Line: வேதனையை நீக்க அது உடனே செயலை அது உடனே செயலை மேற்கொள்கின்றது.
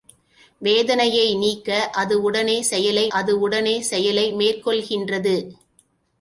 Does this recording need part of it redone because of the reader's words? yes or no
no